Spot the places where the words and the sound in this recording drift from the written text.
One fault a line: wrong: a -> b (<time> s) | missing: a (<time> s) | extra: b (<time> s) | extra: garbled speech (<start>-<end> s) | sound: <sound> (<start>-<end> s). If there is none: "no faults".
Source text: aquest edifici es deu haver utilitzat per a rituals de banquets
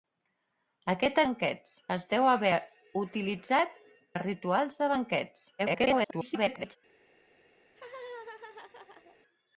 wrong: edifici -> banquets (1.3 s)
missing: per (3.8 s)
extra: garbled speech (5.6-6.8 s)
sound: laugh (7.6-9.2 s)